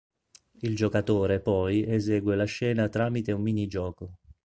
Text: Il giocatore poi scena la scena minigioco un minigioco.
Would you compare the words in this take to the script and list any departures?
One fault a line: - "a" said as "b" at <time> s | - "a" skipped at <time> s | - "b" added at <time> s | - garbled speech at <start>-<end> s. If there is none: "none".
- "scena" said as "esegue" at 1.8 s
- "minigioco" said as "tramite" at 2.9 s